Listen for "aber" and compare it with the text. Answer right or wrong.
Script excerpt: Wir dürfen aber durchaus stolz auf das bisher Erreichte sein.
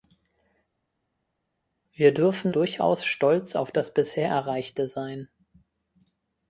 wrong